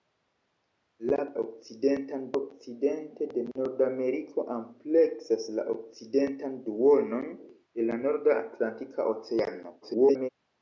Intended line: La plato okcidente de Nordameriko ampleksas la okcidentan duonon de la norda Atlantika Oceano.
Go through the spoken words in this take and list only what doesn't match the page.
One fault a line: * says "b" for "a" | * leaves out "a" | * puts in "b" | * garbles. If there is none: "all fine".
* says "okcidentan" for "plato"
* garbles